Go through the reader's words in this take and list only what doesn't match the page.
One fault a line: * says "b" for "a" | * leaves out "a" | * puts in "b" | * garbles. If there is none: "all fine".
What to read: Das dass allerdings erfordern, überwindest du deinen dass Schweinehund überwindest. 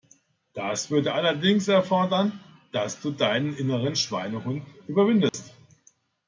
* says "würde" for "dass"
* says "dass" for "überwindest"
* says "inneren" for "dass"